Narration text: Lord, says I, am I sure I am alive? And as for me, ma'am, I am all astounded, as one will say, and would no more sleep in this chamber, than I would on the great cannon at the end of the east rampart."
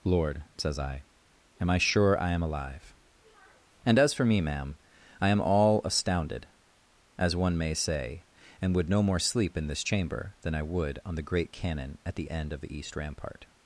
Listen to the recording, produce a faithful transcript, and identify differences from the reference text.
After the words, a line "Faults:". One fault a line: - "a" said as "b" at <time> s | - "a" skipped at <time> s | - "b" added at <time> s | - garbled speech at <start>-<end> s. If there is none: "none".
Lord, says I, am I sure I am alive? And as for me, ma'am, I am all astounded, as one may say, and would no more sleep in this chamber, than I would on the great cannon at the end of the east rampart."
Faults:
- "will" said as "may" at 7.5 s